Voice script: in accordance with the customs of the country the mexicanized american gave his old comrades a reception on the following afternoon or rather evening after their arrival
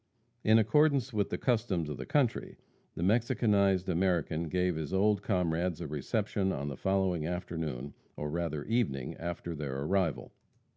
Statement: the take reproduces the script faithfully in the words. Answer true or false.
true